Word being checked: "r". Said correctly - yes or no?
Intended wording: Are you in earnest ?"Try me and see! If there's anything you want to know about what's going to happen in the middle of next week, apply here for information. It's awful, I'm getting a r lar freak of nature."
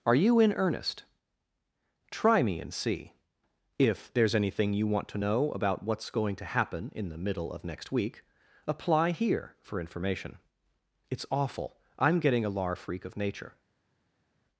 no